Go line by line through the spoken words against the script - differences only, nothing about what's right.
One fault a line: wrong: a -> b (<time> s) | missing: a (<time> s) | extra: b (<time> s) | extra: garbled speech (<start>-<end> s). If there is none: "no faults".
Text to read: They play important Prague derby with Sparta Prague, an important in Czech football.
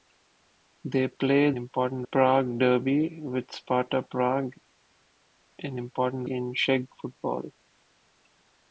no faults